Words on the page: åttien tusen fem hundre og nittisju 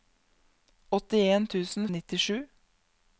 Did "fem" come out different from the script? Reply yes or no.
yes